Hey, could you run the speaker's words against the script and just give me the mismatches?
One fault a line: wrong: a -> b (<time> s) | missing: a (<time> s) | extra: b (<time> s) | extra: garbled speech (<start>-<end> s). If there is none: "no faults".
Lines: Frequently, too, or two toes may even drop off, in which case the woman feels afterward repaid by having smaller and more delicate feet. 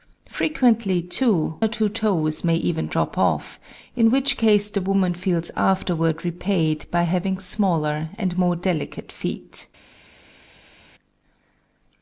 no faults